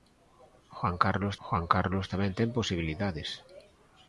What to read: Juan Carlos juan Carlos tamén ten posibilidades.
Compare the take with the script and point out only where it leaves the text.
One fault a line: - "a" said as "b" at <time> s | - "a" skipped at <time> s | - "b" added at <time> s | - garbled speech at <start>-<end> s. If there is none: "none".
none